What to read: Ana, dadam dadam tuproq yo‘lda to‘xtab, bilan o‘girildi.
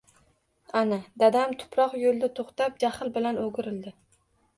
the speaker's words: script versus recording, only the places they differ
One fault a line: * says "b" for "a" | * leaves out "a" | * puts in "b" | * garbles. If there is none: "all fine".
* leaves out "dadam"
* puts in "jahl"